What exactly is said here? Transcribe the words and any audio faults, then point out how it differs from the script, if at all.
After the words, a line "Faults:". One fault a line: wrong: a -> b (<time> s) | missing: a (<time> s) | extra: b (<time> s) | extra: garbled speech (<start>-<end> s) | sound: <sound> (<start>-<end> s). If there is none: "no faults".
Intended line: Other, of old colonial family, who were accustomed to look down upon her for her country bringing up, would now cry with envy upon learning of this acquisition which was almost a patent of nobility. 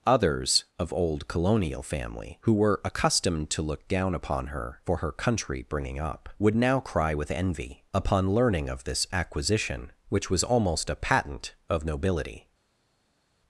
Others, of old colonial family, who were accustomed to look down upon her for her country bringing up, would now cry with envy upon learning of this acquisition which was almost a patent of nobility.
Faults:
wrong: Other -> Others (0.1 s)